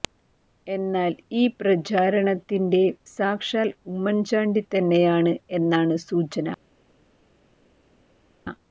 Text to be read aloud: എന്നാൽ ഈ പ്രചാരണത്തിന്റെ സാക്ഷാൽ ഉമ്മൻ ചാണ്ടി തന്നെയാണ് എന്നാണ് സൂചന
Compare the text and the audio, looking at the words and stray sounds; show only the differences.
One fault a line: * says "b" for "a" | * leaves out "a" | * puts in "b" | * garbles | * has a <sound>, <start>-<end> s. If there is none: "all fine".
all fine